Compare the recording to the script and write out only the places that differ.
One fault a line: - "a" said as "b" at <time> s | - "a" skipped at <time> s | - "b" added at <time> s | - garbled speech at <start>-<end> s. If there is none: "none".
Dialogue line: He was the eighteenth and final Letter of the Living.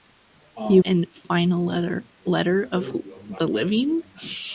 - "was the eighteenth" skipped at 0.8 s